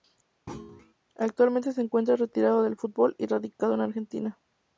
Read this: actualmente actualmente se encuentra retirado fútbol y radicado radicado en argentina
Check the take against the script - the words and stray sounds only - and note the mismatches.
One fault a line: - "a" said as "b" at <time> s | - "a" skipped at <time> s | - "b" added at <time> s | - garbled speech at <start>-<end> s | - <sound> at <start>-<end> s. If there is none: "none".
- thud at 0.5-0.9 s
- "actualmente" skipped at 1.7 s
- "del" added at 2.6 s
- "radicado" skipped at 3.7 s